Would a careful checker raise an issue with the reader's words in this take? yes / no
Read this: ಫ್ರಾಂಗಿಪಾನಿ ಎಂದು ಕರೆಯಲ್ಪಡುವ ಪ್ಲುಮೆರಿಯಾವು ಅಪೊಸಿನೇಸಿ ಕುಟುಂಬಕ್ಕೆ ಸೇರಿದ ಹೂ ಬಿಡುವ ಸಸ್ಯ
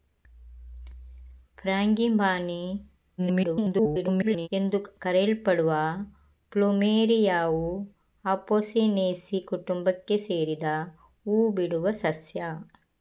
yes